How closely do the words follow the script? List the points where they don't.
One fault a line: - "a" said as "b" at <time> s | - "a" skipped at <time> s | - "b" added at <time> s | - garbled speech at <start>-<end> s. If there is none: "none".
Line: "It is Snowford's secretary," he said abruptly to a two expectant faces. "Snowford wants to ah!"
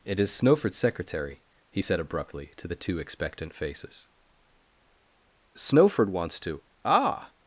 - "a" said as "the" at 2.7 s